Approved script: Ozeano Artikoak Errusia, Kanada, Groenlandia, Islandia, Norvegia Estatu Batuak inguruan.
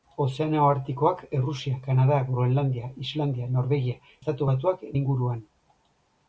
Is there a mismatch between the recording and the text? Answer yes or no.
no